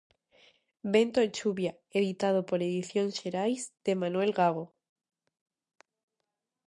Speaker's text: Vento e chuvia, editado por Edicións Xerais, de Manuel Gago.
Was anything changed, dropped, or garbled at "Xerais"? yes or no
no